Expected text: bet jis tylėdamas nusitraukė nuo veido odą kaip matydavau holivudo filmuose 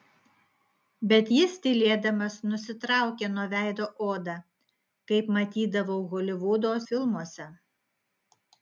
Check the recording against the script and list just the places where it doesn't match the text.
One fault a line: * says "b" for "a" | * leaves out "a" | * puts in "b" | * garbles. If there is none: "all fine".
all fine